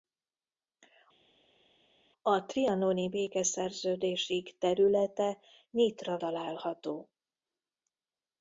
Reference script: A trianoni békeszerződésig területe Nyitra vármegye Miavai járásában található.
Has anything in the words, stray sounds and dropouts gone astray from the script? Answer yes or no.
yes